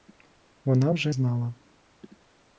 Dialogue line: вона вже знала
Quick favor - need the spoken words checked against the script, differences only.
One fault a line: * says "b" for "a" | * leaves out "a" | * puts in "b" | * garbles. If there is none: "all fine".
all fine